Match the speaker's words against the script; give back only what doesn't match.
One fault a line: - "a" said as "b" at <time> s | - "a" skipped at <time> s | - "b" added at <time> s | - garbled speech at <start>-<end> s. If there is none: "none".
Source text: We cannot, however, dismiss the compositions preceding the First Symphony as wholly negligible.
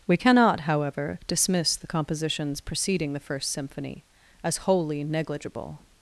none